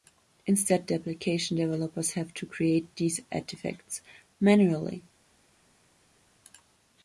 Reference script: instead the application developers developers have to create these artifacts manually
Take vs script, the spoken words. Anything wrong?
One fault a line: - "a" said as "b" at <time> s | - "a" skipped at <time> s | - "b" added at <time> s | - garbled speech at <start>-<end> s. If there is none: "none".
- "developers" skipped at 2.1 s